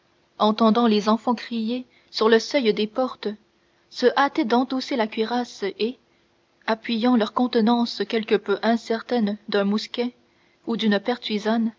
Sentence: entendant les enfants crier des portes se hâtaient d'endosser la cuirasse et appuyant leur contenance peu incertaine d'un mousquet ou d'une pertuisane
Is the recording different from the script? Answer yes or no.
yes